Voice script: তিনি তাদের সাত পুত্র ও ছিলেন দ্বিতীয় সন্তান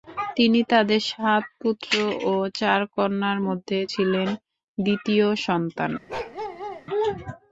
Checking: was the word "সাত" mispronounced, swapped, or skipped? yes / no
no